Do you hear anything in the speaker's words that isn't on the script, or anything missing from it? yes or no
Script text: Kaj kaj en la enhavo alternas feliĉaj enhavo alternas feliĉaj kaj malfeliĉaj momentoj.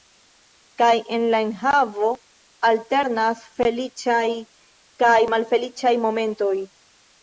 yes